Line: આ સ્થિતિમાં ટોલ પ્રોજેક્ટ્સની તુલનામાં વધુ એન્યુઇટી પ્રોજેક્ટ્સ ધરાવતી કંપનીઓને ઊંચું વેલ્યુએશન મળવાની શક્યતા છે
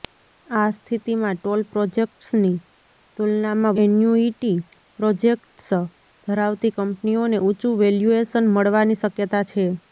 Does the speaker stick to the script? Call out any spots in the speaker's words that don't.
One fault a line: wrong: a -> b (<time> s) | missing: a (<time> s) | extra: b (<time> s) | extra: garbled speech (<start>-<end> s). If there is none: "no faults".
missing: વધુ (3.8 s)